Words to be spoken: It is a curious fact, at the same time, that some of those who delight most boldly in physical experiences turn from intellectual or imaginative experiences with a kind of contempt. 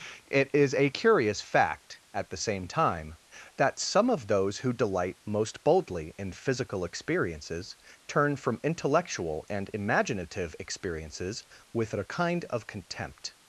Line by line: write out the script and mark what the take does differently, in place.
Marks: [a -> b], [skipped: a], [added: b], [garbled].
It is a curious fact, at the same time, that some of those who delight most boldly in physical experiences turn from intellectual [or -> and] imaginative experiences with a kind of contempt.